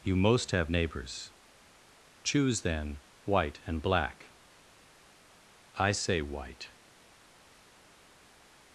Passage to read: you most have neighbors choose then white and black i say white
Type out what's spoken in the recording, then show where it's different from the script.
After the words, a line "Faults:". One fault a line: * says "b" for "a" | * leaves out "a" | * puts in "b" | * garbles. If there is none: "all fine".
you most have neighbors choose then white and black i say white
Faults:
all fine